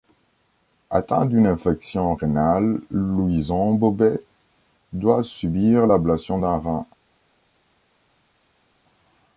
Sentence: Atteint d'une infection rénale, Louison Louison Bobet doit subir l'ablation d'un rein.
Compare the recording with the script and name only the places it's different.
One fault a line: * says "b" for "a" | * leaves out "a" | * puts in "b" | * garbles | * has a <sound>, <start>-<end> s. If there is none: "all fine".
* leaves out "Louison"